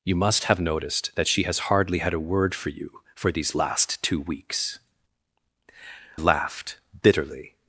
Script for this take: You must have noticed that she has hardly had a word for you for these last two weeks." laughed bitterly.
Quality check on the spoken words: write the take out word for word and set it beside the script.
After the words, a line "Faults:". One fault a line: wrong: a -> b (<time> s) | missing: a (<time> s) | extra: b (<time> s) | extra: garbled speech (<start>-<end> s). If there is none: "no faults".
You must have noticed that she has hardly had a word for you for these last two weeks." laughed bitterly.
Faults:
no faults